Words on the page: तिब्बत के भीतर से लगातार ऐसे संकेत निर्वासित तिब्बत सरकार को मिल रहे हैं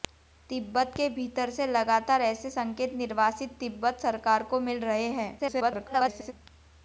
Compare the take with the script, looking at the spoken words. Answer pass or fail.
fail